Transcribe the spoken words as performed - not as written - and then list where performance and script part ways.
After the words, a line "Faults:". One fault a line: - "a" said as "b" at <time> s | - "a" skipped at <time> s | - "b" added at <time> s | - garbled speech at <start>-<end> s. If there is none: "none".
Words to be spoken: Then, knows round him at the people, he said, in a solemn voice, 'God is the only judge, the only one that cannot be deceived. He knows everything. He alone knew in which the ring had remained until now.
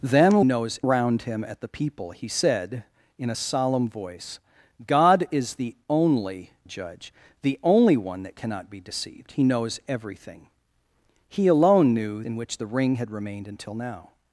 Then, knows round him at the people, he said, in a solemn voice, 'God is the only judge, the only one that cannot be deceived. He knows everything. He alone knew in which the ring had remained until now.
Faults:
none